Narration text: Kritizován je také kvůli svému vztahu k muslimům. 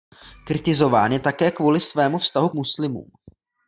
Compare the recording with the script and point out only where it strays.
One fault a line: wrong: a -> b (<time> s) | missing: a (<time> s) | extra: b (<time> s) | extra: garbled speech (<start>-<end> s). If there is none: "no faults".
no faults